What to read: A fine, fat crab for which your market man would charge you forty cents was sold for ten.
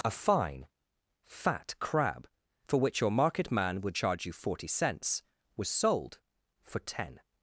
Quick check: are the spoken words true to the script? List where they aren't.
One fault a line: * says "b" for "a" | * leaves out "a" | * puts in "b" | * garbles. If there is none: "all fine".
all fine